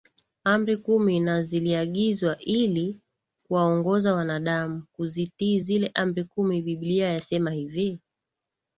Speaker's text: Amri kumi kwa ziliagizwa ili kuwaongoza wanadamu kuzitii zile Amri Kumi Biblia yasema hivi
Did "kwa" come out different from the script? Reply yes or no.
yes